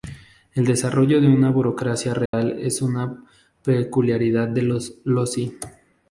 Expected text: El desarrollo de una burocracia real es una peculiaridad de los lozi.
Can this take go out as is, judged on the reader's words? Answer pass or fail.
pass